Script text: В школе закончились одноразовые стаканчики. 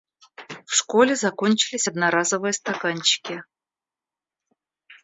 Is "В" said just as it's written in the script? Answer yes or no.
yes